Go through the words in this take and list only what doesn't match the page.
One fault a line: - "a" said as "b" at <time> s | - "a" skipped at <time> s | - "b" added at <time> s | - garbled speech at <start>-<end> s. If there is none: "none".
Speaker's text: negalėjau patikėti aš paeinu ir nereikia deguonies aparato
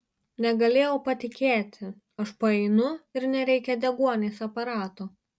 none